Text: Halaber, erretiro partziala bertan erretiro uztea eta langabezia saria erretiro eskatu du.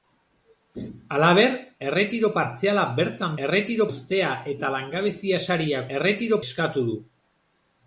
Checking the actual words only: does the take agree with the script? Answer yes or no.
yes